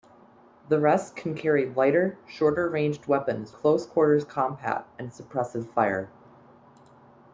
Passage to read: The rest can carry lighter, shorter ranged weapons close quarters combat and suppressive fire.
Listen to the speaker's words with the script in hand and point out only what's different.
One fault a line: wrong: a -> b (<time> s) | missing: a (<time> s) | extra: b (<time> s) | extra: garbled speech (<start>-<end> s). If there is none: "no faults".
no faults